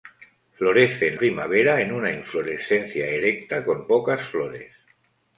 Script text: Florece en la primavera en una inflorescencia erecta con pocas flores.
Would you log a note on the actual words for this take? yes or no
yes